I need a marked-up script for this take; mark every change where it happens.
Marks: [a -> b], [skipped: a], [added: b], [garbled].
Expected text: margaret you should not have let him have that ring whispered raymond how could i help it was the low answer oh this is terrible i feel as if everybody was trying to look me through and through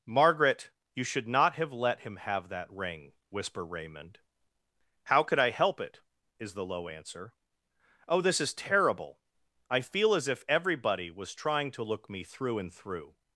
margaret you should not have let him have that ring [whispered -> whisper] raymond how could i help it [was -> is] the low answer oh this is terrible i feel as if everybody was trying to look me through and through